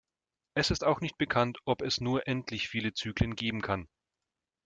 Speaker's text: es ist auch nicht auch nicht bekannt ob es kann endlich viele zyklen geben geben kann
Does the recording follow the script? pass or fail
fail